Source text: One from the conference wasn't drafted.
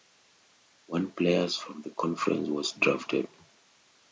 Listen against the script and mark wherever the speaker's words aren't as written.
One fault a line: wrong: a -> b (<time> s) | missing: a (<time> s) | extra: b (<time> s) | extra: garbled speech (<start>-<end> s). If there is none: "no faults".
extra: players (1.1 s)
wrong: wasn't -> was (2.5 s)